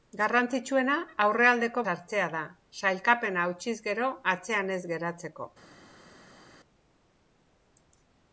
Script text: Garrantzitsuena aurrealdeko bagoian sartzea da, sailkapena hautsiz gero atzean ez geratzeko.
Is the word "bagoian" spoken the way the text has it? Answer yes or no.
no